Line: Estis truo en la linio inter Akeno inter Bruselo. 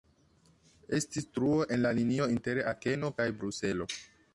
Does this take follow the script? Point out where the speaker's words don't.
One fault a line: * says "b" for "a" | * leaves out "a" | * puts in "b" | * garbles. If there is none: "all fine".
* says "kaj" for "inter"